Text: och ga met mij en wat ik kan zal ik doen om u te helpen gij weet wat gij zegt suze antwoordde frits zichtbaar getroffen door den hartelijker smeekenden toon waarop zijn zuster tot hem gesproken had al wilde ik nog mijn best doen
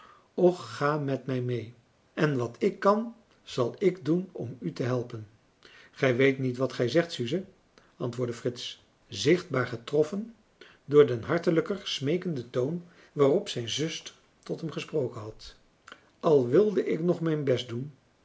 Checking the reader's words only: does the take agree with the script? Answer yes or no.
no